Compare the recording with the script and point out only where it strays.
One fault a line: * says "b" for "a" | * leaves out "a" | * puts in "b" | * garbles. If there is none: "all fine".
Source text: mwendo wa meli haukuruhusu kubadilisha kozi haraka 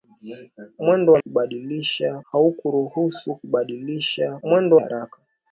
* says "kubadilisha" for "meli"
* says "mwendo" for "kozi"